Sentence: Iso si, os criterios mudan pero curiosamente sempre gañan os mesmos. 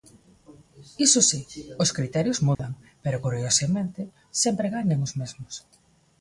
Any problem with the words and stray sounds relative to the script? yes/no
yes